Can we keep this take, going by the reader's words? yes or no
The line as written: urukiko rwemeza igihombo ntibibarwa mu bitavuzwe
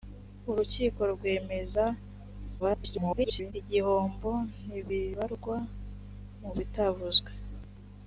no